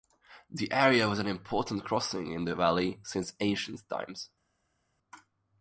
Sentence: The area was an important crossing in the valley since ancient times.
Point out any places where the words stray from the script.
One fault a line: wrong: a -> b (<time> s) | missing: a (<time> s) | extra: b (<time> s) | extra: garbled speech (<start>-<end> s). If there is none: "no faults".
no faults